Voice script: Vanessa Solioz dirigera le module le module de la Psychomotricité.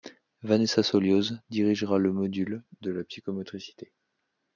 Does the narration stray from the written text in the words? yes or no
yes